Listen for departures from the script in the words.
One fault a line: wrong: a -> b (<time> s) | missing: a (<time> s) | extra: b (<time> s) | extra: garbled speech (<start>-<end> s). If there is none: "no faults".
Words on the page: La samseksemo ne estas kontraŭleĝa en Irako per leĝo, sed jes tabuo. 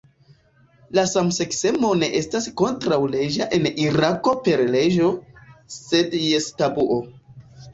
no faults